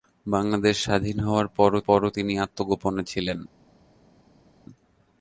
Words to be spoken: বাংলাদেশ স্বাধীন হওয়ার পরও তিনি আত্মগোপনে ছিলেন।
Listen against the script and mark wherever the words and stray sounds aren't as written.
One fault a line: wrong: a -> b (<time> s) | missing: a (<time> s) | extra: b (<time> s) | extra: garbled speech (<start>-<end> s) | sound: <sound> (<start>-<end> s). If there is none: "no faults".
extra: পরও (1.9 s)